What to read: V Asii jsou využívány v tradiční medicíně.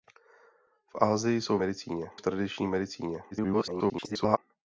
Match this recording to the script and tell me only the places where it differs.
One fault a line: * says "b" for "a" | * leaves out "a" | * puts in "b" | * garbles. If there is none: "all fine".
* says "medicíně" for "využívány"
* garbles